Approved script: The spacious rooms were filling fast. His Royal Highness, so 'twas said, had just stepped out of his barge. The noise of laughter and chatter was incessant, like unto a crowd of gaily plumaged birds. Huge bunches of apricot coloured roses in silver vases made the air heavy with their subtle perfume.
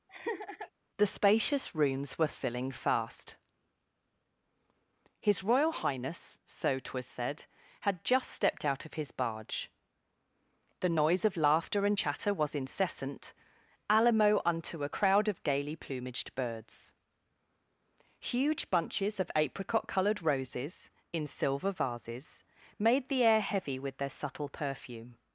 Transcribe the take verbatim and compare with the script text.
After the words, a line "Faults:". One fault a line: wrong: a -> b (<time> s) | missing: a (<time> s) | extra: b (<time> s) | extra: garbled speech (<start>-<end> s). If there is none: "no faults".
The spacious rooms were filling fast. His Royal Highness, so 'twas said, had just stepped out of his barge. The noise of laughter and chatter was incessant, alamo unto a crowd of gaily plumaged birds. Huge bunches of apricot coloured roses in silver vases made the air heavy with their subtle perfume.
Faults:
wrong: like -> alamo (13.9 s)